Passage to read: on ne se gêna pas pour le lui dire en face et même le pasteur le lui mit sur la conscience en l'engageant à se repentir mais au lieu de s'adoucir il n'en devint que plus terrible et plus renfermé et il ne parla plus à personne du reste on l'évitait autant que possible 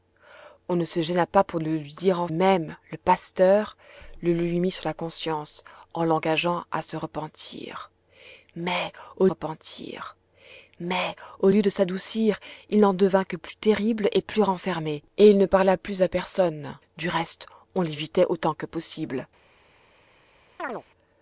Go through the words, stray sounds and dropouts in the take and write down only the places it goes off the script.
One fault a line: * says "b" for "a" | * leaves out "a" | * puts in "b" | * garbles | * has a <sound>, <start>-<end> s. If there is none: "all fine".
* leaves out "face et"
* puts in "repentir mais au"
* has a chirp, 20.6-20.8 s